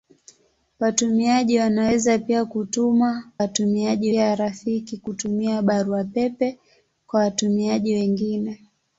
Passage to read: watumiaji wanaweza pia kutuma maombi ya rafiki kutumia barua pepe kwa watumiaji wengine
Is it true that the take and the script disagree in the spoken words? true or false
true